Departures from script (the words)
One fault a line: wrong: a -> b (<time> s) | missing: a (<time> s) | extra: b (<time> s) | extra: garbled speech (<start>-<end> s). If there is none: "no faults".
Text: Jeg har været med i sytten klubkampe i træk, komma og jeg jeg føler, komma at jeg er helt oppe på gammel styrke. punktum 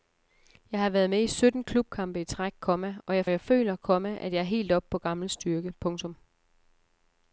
no faults